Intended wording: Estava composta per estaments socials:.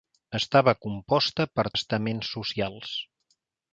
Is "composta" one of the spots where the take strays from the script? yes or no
no